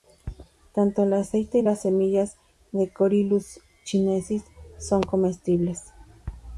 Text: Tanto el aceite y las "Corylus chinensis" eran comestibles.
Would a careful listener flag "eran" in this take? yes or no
yes